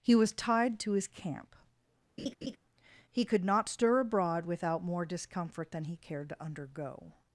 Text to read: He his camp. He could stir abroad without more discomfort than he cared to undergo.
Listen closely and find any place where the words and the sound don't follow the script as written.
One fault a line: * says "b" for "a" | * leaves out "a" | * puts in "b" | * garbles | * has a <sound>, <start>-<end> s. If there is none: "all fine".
* puts in "was tied to"
* has a laugh, 2.2-2.6 s
* puts in "not"